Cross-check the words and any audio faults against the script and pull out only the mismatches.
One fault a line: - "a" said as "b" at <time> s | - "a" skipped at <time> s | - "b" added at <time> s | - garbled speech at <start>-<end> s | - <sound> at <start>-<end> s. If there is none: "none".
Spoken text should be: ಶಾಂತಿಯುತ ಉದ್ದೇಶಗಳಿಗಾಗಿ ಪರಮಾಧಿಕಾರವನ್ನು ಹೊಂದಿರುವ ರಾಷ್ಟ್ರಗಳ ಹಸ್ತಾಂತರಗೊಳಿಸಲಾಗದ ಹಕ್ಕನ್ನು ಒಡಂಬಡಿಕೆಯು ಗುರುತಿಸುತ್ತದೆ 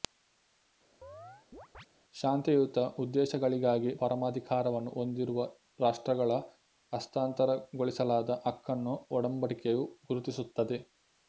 - chirp at 1.0-1.9 s